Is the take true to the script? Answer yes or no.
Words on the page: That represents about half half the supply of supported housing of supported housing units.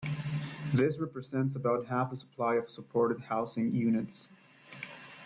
no